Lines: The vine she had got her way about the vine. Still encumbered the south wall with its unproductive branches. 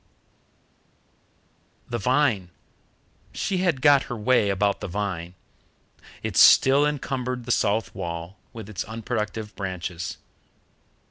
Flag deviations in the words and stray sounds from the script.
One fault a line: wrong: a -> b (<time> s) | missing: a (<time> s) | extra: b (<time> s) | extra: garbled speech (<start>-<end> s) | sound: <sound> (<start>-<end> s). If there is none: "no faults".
extra: It (6.2 s)